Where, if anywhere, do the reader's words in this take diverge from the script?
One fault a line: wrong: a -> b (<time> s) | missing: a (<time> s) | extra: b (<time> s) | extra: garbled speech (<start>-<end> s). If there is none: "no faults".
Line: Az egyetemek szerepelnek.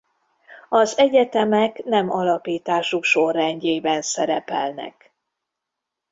extra: nem alapításuk sorrendjében (1.8 s)